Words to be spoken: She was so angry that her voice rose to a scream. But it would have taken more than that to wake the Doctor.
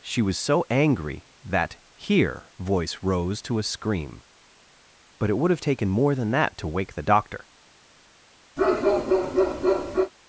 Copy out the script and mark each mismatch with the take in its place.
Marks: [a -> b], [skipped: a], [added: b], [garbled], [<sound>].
She was so angry that [her -> here] voice rose to a scream. But it would have taken more than that to wake the Doctor. [bark]